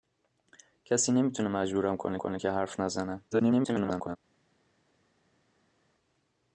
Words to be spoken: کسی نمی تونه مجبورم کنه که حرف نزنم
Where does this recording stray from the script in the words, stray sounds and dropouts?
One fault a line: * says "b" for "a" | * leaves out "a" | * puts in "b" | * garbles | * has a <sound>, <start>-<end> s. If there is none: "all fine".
* puts in "کنه"
* garbles